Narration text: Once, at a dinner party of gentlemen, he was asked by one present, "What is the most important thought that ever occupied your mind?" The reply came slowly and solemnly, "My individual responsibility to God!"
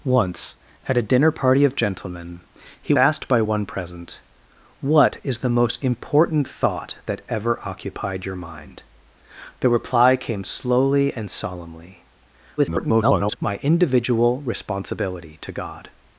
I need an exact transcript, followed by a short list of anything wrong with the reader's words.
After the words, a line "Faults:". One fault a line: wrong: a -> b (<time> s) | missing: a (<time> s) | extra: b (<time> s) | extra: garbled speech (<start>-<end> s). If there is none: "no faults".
Once, at a dinner party of gentlemen, he asked by one present, "What is the most important thought that ever occupied your mind?" The reply came slowly and solemnly, [garbled] "My individual responsibility to God!"
Faults:
missing: was (2.9 s)
extra: garbled speech (12.6-13.4 s)